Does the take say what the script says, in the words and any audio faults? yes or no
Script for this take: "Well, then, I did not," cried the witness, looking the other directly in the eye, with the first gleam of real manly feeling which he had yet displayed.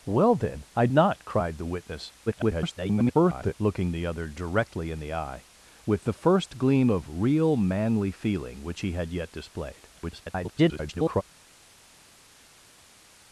no